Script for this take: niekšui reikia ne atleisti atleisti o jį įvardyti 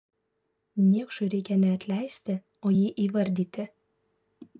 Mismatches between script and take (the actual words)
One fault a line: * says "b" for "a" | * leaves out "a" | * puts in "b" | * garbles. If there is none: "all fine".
* leaves out "atleisti"